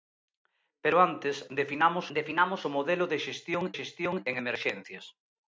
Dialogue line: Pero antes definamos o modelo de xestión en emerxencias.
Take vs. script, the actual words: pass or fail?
fail